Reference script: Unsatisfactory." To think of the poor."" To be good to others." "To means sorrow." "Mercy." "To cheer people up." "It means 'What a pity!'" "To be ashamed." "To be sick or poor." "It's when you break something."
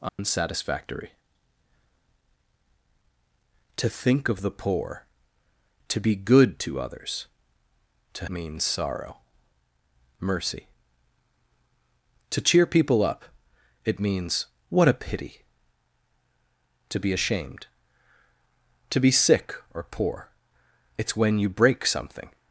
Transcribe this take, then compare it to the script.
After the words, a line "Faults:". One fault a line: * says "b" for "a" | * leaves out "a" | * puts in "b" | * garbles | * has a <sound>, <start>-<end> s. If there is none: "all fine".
Unsatisfactory." To think of the poor."" To be good to others." "To means sorrow." "Mercy." "To cheer people up." "It means 'What a pity!'" "To be ashamed." "To be sick or poor." "It's when you break something."
Faults:
* has a dropout, 0.1-0.2 s